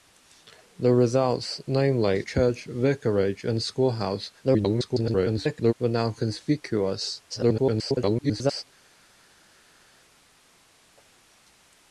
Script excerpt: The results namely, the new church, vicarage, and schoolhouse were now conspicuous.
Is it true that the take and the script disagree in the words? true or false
true